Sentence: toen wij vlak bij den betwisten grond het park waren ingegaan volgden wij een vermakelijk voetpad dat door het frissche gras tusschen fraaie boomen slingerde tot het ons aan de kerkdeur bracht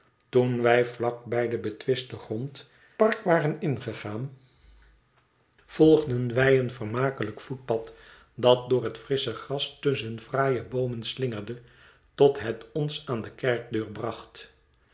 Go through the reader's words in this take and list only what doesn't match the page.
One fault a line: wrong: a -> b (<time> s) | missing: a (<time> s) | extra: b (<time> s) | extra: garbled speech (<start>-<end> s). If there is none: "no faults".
missing: het (2.7 s)